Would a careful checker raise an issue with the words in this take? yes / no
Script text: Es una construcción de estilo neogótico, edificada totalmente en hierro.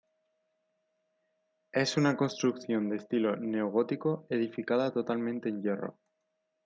no